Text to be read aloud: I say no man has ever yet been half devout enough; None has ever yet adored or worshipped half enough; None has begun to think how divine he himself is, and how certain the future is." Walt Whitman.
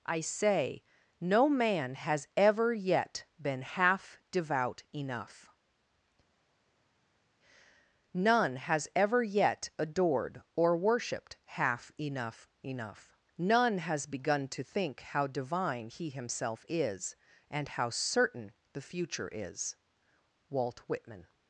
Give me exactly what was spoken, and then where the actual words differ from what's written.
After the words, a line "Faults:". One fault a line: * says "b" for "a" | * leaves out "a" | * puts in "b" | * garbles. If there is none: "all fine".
I say no man has ever yet been half devout enough; None has ever yet adored or worshipped half enough; enough None has begun to think how divine he himself is, and how certain the future is." Walt Whitman.
Faults:
* puts in "enough"